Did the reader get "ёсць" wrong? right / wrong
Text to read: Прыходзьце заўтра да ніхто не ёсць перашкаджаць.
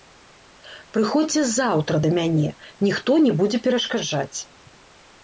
wrong